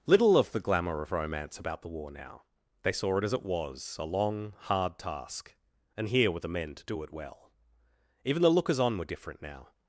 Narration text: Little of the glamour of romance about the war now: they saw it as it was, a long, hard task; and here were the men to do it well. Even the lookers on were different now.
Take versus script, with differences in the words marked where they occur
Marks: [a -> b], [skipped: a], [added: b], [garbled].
Little of the glamour of romance about the war now: they saw it as it was, a long, hard task; and here were the men to do it well. Even the lookers on were different now.